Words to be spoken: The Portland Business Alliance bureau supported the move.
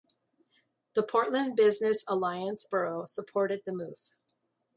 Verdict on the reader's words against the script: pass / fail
pass